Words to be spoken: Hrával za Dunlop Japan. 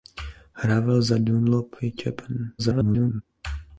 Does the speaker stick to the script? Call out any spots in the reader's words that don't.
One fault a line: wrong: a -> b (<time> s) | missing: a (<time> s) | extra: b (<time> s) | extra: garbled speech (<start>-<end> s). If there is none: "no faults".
extra: garbled speech (2.6-3.2 s)